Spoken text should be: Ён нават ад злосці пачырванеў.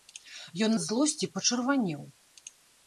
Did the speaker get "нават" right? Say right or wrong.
wrong